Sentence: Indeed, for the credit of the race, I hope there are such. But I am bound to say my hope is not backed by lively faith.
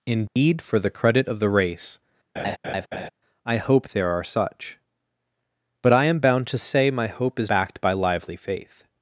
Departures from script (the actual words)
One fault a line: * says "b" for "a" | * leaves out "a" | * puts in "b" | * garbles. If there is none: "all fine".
* leaves out "not"